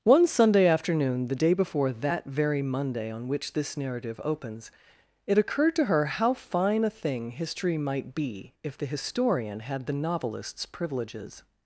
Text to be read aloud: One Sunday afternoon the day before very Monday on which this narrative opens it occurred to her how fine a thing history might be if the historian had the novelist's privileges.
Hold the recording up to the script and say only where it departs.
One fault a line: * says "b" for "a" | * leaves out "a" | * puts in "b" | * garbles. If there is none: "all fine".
* puts in "that"